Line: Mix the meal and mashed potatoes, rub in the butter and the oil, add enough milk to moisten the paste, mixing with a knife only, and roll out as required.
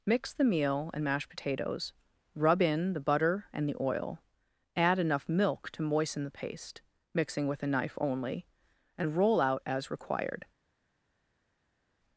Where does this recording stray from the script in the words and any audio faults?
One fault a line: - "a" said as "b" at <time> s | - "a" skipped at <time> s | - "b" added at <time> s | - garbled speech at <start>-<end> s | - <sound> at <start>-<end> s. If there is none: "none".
none